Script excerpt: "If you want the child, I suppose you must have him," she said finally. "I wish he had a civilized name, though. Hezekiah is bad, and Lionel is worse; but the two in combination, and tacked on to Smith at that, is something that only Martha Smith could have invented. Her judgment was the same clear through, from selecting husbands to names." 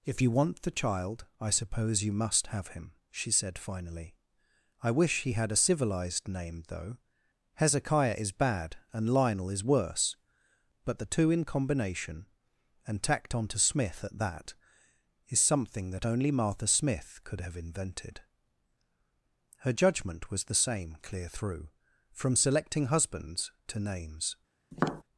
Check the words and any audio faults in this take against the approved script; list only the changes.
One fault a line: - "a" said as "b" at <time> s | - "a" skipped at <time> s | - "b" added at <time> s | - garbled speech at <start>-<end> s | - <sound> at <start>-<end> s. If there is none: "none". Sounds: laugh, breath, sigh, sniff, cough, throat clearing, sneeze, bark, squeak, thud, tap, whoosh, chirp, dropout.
- tap at 24.7-25.0 s